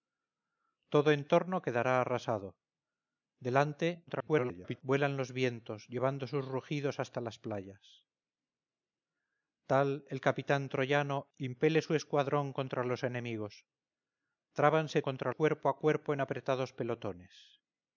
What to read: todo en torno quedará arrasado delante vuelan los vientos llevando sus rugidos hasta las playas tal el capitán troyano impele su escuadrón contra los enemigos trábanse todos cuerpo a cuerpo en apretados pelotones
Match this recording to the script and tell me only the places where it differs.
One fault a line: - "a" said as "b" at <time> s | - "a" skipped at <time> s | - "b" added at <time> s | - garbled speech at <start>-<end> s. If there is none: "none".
- garbled speech at 4.1-4.8 s
- "todos" said as "contra" at 15.0 s